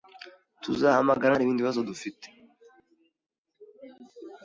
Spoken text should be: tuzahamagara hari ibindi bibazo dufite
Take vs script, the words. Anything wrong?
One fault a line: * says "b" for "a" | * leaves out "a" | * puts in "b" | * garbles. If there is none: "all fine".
all fine